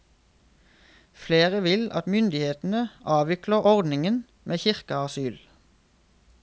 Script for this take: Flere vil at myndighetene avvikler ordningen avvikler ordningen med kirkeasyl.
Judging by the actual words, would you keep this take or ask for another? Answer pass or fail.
fail